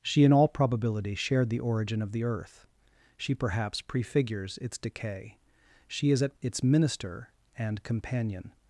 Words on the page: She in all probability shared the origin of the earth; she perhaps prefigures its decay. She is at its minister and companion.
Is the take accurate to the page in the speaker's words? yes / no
yes